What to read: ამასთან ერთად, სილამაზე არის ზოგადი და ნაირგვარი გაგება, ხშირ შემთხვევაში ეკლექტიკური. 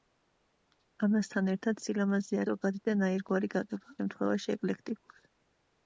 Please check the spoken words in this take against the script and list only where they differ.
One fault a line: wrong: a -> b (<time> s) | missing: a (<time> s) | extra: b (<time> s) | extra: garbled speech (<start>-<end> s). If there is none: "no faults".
missing: არის (2.4 s)
missing: ხშირ (4.0 s)